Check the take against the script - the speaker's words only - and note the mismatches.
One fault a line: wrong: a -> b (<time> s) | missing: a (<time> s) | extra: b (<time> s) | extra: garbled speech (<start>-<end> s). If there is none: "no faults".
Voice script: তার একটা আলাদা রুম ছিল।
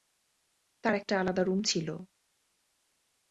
no faults